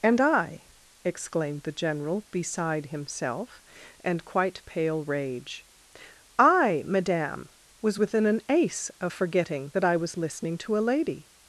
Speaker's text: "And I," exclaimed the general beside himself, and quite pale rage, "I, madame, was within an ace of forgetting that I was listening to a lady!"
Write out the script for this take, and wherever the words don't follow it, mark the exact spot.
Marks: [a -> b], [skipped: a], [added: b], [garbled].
"And I," exclaimed the general beside himself, and quite pale rage, "I, madame, was within an ace of forgetting that I was listening to a lady!"